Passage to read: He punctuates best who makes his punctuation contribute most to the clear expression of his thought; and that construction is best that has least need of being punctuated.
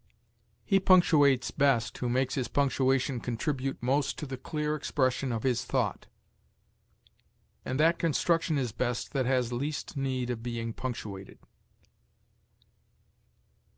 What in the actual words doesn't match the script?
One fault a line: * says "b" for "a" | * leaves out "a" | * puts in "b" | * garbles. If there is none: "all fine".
all fine